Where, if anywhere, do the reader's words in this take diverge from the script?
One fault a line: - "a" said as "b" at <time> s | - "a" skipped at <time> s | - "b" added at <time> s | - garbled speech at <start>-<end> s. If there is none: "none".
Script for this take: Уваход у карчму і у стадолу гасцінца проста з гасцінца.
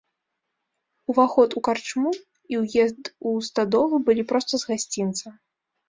- "ўезд" added at 2.6 s
- "гасцінца" said as "былі" at 4.1 s